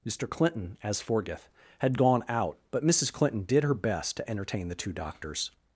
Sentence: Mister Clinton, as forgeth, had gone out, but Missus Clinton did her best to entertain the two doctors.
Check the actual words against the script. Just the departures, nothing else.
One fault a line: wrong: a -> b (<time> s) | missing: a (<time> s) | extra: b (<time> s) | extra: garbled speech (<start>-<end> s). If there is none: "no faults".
no faults